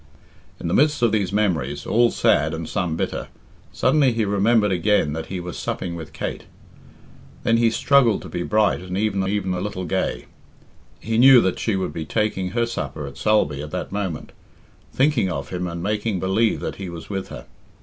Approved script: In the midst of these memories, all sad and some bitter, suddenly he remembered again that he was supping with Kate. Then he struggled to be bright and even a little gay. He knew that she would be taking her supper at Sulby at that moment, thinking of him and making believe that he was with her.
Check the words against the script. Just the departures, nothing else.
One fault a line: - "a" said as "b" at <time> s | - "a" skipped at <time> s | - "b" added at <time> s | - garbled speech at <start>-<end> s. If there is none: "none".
- "even" added at 9.3 s